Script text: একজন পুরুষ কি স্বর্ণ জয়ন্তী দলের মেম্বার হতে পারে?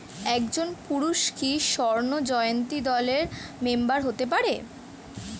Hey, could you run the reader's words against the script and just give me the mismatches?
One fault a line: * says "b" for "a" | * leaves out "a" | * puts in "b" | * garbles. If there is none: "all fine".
all fine